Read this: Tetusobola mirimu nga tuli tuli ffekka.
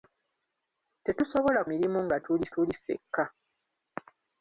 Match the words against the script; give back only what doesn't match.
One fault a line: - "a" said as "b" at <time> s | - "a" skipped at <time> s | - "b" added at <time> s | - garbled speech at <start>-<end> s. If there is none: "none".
none